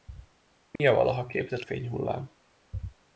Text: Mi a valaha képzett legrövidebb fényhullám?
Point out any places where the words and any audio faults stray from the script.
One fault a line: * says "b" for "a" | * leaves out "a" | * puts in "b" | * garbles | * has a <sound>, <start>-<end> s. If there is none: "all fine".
* has a dropout, 0.8-0.8 s
* leaves out "legrövidebb"